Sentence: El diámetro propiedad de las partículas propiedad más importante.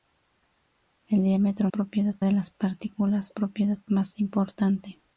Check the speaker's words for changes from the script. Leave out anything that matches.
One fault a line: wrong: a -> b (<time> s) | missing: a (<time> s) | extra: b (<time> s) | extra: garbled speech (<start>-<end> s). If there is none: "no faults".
no faults